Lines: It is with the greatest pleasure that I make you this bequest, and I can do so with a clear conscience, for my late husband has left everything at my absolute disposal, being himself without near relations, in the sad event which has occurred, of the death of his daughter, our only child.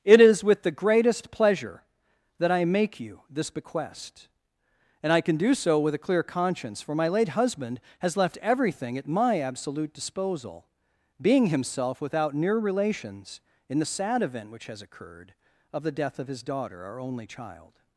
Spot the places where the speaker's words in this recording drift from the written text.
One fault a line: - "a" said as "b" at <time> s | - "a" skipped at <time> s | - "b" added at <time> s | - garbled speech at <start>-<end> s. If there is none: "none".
none